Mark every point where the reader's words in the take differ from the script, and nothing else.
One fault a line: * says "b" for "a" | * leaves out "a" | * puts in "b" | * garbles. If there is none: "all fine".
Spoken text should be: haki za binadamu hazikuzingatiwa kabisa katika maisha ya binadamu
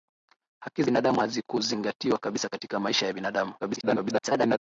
* leaves out "za"
* garbles